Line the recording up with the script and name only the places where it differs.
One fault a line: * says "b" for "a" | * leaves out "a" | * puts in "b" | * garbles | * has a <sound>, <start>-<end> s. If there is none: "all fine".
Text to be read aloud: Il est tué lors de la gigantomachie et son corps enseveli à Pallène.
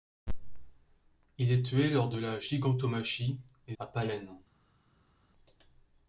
* leaves out "son corps enseveli"